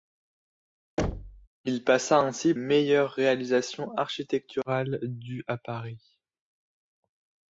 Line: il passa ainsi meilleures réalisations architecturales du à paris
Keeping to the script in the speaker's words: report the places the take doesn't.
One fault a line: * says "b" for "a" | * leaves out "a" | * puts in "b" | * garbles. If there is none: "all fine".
all fine